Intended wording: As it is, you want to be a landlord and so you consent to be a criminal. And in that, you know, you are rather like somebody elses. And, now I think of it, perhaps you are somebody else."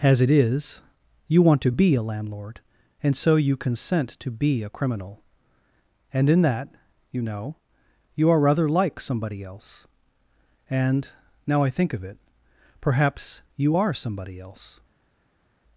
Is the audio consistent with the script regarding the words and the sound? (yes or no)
no